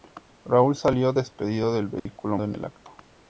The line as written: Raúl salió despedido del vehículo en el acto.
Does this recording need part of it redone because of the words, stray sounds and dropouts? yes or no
yes